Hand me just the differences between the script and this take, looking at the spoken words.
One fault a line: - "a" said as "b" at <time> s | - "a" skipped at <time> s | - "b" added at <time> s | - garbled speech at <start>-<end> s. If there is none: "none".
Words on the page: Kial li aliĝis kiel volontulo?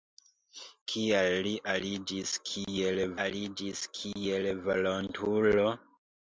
- "aliĝis kiel" added at 3.3 s